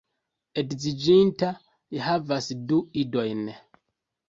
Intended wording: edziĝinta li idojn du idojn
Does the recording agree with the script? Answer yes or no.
no